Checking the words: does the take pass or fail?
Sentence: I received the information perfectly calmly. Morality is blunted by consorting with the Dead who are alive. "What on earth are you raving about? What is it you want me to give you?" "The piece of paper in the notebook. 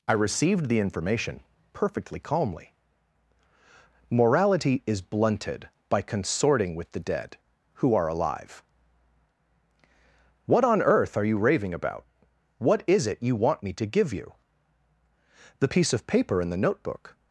pass